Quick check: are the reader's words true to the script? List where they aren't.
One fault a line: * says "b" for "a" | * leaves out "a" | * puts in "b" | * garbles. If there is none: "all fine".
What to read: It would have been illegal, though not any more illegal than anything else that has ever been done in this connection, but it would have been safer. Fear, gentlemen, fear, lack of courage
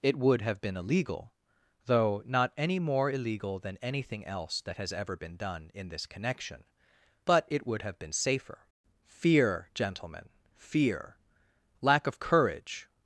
all fine